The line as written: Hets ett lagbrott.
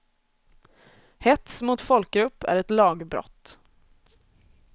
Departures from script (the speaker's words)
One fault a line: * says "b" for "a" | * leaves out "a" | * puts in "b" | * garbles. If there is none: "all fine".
* puts in "mot folkgrupp är"